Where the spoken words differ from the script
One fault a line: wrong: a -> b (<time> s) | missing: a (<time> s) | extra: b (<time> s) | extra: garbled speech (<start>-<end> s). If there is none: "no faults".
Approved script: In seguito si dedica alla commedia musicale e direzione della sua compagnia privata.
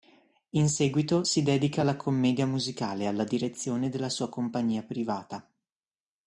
extra: alla (3.1 s)